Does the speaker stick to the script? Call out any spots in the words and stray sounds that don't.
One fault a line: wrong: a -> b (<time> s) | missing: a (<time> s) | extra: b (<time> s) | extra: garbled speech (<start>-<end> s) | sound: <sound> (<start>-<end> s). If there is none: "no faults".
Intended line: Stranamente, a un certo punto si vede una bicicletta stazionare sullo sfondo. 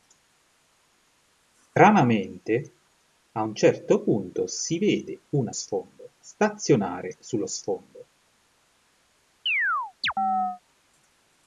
wrong: bicicletta -> sfondo (5.5 s)
sound: chirp (9.5-10.6 s)